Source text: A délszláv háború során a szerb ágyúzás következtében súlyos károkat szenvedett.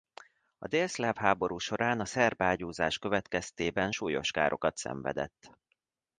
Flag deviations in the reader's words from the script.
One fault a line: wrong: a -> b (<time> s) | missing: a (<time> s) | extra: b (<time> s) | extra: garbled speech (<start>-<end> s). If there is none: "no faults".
no faults